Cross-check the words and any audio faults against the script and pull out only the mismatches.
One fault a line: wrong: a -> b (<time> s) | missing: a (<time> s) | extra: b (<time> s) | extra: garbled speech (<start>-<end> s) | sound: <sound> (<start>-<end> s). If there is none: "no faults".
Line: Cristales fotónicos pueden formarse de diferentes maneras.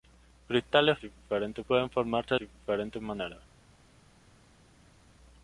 wrong: fotónicos -> diferentes (1.0 s)
missing: de (2.3 s)